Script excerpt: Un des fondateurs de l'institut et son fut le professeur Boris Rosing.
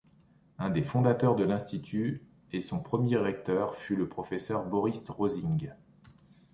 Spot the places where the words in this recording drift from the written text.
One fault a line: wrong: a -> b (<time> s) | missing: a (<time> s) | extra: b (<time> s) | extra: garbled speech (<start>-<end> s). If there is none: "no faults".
extra: premier recteur (2.8 s)